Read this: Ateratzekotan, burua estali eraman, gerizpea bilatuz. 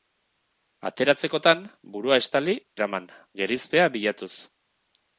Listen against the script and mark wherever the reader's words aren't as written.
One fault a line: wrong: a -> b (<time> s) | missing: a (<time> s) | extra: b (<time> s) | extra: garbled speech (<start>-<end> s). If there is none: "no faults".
no faults